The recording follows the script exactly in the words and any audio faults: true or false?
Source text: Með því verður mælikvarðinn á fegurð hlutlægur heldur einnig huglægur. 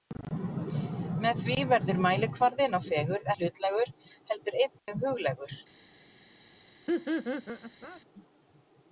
false